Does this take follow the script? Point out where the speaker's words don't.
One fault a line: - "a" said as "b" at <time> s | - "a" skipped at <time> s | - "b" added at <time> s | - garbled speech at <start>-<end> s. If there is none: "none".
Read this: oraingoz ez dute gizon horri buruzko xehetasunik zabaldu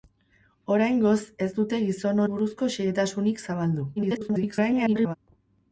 - "horri" skipped at 2.2 s
- garbled speech at 4.0-5.1 s